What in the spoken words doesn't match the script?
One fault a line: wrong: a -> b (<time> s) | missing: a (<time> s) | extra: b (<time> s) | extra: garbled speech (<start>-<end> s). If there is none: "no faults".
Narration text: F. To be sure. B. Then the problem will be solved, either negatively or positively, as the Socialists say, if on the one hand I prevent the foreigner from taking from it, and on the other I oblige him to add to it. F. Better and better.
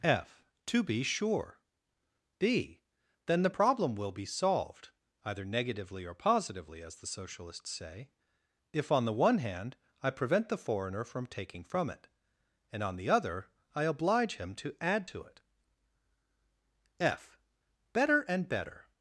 no faults